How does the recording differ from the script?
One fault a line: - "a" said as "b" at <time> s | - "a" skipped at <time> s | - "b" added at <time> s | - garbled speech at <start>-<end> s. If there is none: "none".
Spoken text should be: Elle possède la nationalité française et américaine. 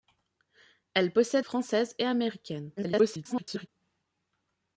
- "la nationalité" skipped at 1.4 s
- garbled speech at 2.8-3.7 s